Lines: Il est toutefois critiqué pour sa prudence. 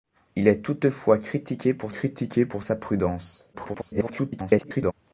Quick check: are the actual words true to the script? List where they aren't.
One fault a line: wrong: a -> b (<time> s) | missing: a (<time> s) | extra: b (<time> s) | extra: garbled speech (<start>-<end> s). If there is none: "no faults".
extra: critiqué pour (1.9 s)
extra: garbled speech (3.5-4.9 s)